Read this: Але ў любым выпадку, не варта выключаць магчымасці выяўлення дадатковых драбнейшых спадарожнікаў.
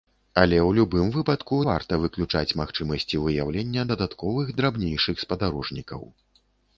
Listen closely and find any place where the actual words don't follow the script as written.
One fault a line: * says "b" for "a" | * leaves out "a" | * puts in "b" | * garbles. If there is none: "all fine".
* leaves out "не"